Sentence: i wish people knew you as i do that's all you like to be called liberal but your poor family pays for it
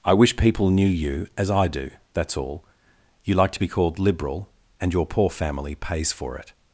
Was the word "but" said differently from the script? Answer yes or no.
yes